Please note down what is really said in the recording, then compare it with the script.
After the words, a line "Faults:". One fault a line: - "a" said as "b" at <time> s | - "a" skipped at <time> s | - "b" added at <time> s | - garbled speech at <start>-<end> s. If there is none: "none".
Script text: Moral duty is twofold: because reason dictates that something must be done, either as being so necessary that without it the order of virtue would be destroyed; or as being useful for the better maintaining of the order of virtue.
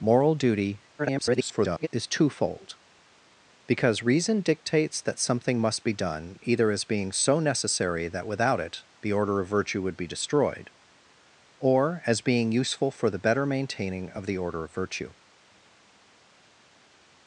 Moral duty [garbled] is twofold: because reason dictates that something must be done, either as being so necessary that without it the order of virtue would be destroyed; or as being useful for the better maintaining of the order of virtue.
Faults:
- garbled speech at 1.0-1.9 s